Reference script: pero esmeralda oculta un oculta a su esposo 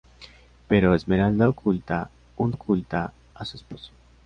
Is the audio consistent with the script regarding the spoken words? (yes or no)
yes